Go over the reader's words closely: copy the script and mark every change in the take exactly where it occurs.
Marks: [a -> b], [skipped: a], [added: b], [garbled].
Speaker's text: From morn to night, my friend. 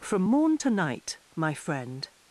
From morn to night, my friend.